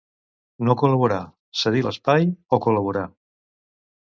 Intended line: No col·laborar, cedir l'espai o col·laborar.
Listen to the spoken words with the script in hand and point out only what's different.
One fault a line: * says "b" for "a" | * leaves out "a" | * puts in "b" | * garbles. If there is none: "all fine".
all fine